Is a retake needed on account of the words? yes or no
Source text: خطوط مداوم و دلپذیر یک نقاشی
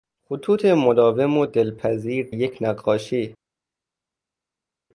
no